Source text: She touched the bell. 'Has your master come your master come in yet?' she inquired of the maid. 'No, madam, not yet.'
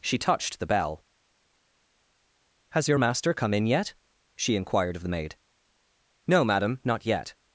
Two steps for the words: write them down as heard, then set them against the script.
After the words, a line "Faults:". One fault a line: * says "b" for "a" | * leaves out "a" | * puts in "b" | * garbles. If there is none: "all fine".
She touched the bell. 'Has your master come in yet?' she inquired of the maid. 'No, madam, not yet.'
Faults:
* leaves out "your master come"